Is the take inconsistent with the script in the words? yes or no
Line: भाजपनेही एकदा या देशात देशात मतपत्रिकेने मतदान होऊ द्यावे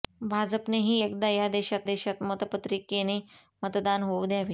no